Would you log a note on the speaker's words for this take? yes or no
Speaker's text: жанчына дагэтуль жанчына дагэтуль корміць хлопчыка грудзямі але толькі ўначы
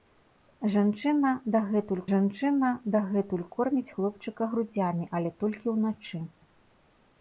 no